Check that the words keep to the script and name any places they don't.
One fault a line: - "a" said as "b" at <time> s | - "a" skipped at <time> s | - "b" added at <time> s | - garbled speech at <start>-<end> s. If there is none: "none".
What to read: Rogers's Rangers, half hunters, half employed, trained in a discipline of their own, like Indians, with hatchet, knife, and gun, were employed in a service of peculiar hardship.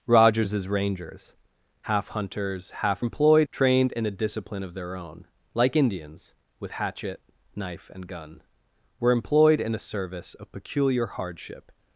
none